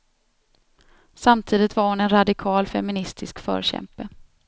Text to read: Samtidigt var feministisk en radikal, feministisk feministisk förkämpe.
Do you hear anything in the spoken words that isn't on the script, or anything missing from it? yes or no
yes